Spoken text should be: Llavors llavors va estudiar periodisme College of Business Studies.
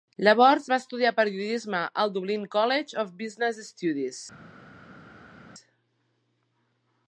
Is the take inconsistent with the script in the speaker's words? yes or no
yes